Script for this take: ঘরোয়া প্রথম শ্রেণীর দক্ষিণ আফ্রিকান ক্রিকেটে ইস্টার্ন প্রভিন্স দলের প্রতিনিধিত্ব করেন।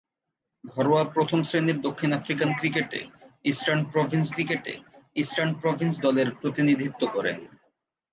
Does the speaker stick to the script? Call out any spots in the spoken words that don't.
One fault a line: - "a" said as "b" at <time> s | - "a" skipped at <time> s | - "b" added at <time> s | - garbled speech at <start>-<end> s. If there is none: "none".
- "ক্রিকেটে ইস্টার্ন প্রভিন্স" added at 4.3 s